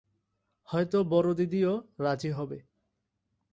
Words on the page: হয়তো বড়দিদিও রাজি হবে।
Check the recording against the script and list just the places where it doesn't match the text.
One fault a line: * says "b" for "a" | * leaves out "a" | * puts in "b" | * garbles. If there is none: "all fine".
all fine